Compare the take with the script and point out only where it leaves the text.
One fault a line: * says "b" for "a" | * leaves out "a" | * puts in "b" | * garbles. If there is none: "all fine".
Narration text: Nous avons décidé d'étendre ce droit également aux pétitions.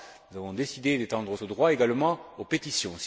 all fine